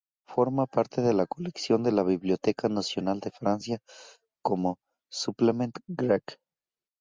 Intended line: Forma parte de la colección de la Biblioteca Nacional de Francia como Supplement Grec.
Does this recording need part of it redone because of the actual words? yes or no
no